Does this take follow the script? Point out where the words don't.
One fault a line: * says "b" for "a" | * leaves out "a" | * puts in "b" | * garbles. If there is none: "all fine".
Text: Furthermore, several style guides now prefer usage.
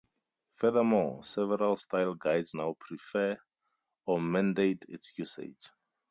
* puts in "or mandate its"